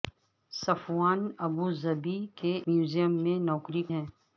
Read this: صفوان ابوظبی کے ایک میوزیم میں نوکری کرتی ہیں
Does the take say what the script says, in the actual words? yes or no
no